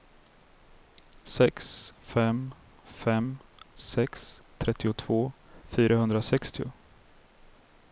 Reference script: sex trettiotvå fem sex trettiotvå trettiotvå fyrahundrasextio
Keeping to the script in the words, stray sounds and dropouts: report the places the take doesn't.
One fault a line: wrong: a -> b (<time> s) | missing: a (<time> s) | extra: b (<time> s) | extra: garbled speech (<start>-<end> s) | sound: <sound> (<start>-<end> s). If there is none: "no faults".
wrong: trettiotvå -> fem (2.1 s)
missing: trettiotvå (5.3 s)